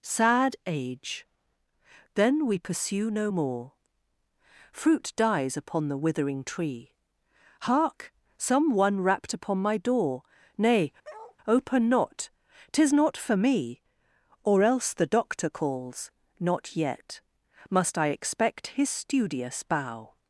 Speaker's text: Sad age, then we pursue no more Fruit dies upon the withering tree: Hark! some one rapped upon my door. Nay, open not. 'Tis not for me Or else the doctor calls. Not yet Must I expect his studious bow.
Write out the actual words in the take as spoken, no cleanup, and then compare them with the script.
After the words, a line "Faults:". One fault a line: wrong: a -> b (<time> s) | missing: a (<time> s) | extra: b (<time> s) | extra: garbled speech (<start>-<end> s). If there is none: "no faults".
Sad age, then we pursue no more Fruit dies upon the withering tree: Hark! some one rapped upon my door. Nay, open not. 'Tis not for me Or else the doctor calls. Not yet Must I expect his studious bow.
Faults:
no faults